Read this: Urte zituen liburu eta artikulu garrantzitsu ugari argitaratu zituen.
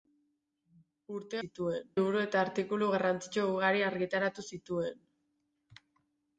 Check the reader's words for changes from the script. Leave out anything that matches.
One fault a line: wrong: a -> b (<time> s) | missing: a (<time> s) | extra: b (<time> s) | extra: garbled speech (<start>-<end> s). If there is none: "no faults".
no faults